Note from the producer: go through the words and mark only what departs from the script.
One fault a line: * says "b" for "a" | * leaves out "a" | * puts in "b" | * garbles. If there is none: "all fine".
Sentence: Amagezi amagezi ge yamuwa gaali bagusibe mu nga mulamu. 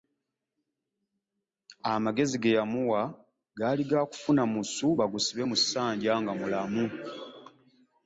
* leaves out "amagezi"
* puts in "ga kufuna musu"
* puts in "ssanja"